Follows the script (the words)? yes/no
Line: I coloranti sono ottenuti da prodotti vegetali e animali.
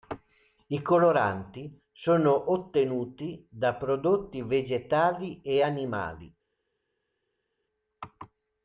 yes